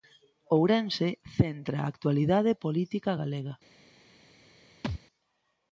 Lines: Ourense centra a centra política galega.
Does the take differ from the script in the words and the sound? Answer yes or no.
yes